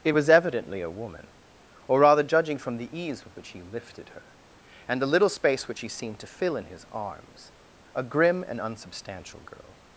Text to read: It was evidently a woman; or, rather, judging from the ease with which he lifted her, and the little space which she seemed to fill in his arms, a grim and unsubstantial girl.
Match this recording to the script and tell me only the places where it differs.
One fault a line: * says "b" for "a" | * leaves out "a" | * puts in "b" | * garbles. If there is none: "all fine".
all fine